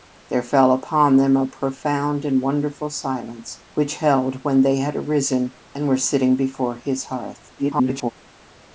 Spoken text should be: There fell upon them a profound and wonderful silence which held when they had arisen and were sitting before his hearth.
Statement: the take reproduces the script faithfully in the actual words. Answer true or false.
false